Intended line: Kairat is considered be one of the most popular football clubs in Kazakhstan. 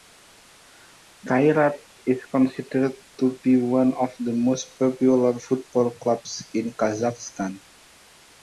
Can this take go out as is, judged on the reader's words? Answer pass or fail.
fail